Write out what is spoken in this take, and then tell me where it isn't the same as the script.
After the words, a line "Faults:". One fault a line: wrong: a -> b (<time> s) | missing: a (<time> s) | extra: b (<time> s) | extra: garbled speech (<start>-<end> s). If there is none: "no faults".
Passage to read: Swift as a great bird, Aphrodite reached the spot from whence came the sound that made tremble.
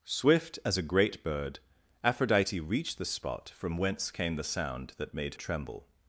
Swift as a great bird, Aphrodite reached the spot from whence came the sound that made tremble.
Faults:
no faults